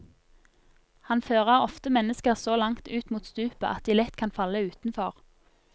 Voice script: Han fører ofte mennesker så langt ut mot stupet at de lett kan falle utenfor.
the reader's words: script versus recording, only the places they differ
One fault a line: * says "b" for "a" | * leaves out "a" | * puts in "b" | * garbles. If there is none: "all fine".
all fine